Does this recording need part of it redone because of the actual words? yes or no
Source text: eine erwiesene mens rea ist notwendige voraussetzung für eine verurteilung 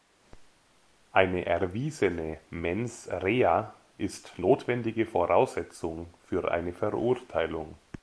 no